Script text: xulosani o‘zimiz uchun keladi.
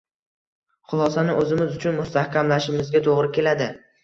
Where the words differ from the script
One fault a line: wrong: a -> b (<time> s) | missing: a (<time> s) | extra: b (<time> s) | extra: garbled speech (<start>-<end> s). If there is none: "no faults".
extra: mustahkamlashimizga to‘g‘ri (2.0 s)